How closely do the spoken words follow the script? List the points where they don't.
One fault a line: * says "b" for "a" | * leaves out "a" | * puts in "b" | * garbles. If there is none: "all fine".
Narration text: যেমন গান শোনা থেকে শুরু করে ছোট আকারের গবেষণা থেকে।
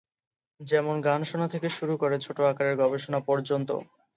* says "পর্যন্ত" for "থেকে"